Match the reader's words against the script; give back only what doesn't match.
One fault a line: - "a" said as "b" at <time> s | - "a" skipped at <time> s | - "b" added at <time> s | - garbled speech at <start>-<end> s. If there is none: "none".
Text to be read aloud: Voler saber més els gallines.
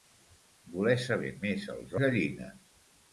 none